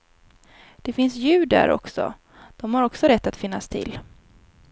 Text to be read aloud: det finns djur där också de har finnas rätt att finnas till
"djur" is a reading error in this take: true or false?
false